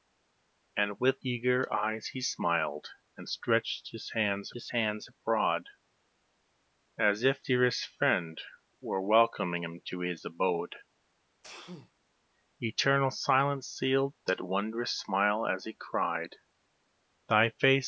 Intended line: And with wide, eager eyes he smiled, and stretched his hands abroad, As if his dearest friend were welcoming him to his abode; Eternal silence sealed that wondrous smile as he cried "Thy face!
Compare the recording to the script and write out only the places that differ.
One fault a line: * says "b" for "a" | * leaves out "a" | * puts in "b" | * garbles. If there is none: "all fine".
* leaves out "wide"
* puts in "his hands"
* leaves out "his"